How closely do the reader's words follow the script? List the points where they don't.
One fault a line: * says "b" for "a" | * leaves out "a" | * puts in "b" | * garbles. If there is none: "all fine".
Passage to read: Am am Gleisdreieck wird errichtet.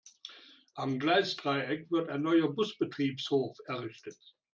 * leaves out "am"
* puts in "ein neuer Busbetriebshof"